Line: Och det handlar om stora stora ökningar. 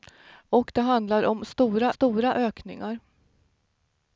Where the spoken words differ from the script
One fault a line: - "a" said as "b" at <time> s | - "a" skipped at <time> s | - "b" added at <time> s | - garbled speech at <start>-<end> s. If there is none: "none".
none